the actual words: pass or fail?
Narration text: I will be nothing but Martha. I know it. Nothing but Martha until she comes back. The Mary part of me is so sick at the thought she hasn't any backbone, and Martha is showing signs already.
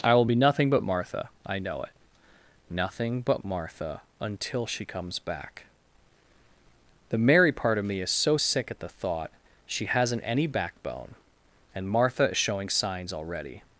pass